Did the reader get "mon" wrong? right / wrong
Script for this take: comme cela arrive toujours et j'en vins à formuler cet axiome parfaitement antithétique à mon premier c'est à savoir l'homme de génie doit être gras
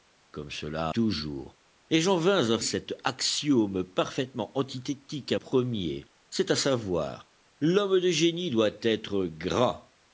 wrong